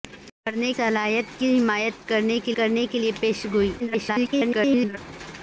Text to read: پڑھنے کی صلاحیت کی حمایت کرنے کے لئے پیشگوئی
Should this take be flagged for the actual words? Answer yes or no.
yes